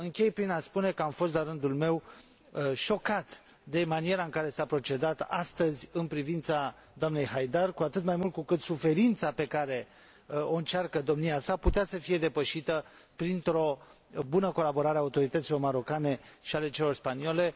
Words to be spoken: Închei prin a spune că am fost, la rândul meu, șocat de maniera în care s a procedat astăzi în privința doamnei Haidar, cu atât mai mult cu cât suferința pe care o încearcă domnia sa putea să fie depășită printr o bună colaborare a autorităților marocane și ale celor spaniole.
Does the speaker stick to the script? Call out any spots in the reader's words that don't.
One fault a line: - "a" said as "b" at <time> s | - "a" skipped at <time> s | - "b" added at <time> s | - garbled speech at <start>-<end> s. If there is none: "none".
none